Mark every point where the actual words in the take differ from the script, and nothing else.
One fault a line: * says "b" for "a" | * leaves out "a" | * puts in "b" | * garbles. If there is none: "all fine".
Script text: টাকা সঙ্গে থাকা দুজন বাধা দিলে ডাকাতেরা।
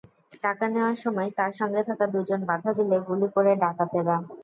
* puts in "নেওয়ার সময় তাঁর"
* puts in "গুলি করে"